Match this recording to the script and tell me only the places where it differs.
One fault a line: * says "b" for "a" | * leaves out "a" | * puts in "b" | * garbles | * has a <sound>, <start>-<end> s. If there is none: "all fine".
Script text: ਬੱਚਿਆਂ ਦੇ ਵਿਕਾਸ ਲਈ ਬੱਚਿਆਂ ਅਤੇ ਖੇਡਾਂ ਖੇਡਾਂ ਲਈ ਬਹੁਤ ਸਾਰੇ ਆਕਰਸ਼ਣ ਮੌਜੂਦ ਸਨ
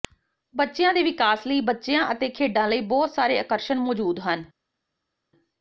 * leaves out "ਖੇਡਾਂ"
* says "ਹਨ" for "ਸਨ"